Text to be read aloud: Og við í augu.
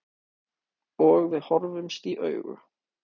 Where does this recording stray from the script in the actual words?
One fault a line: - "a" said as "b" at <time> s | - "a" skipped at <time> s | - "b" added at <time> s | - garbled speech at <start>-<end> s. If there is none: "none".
- "horfumst" added at 1.5 s